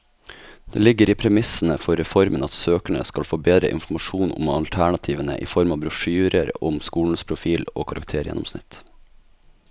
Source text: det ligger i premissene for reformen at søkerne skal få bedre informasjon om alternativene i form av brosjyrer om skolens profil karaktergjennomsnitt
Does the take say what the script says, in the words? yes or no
no